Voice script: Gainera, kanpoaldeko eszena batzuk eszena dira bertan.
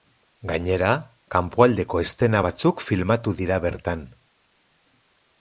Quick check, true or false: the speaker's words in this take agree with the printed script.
false